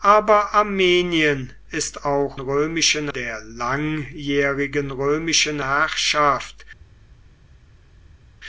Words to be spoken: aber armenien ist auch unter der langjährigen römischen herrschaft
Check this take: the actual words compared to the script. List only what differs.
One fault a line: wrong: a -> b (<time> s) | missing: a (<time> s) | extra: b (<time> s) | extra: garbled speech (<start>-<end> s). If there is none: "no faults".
wrong: unter -> römischen (2.4 s)